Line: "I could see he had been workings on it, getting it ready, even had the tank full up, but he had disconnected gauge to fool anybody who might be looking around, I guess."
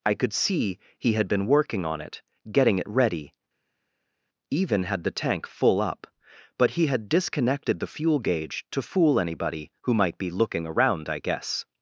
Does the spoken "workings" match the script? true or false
false